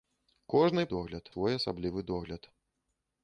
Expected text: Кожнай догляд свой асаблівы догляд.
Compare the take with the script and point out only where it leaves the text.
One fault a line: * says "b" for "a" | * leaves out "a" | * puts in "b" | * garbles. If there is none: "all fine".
all fine